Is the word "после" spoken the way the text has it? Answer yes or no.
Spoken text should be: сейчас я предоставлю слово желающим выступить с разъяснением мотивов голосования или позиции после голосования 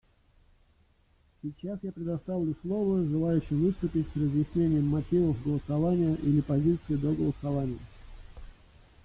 no